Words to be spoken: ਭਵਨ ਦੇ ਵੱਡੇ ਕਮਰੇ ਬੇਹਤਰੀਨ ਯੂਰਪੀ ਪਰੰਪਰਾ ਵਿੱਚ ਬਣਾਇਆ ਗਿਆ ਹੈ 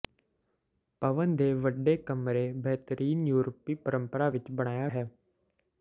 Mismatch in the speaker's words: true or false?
true